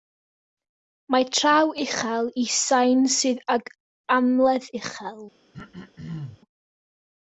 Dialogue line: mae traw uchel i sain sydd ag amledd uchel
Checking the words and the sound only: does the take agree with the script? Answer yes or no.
no